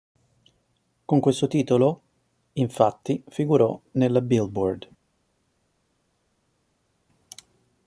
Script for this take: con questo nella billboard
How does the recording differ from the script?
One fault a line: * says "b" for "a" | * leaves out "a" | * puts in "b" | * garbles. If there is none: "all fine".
* puts in "titolo infatti figurò"